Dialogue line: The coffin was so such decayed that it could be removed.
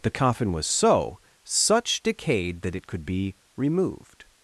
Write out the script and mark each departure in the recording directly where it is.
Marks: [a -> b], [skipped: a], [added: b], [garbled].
The coffin was so such decayed that it could be removed.